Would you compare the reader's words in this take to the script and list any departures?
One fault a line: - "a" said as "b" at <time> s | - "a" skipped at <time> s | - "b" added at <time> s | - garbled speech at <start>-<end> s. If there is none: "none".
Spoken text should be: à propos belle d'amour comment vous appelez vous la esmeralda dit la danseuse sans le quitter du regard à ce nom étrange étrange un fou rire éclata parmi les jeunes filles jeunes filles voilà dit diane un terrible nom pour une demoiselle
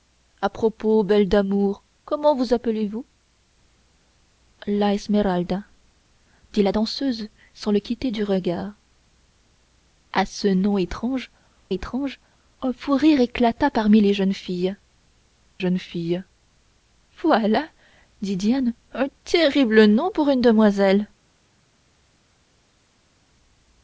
none